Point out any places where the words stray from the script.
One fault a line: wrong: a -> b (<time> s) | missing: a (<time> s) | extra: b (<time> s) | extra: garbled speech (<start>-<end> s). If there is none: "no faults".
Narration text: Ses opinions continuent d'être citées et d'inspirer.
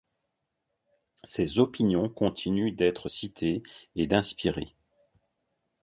no faults